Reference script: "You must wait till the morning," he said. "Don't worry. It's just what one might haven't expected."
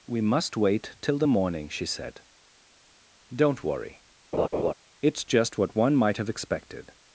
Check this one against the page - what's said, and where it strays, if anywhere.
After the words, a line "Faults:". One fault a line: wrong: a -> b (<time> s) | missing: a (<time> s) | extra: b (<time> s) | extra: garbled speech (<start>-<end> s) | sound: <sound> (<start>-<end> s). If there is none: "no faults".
"We must wait till the morning," she said. "Don't worry. It's just what one might have expected."
Faults:
wrong: You -> We (0.1 s)
wrong: he -> she (1.7 s)
sound: laugh (4.3-4.7 s)
wrong: haven't -> have (6.2 s)